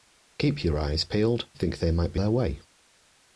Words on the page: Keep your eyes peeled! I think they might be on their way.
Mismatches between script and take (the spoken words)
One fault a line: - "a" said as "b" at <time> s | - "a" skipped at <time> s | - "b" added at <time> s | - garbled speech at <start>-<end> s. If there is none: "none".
- "I" skipped at 1.5 s
- "on" skipped at 2.2 s